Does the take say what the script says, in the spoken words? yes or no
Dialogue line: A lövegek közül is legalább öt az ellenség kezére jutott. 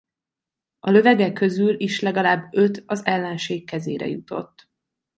yes